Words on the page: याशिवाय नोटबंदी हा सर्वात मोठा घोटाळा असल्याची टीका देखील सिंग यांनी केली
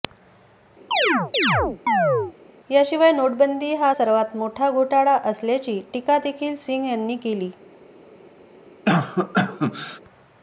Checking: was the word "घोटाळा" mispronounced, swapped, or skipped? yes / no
no